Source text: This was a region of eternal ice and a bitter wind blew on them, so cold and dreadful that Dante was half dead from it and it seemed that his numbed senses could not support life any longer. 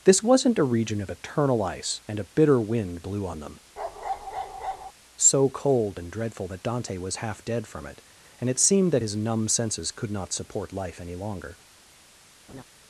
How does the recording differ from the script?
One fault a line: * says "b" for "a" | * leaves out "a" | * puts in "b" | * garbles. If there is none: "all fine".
* says "wasn't" for "was"
* says "numb" for "numbed"